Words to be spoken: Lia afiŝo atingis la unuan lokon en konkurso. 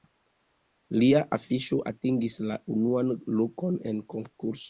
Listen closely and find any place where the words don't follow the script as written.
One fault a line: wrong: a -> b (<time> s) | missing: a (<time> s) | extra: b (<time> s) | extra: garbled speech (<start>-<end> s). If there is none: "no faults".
no faults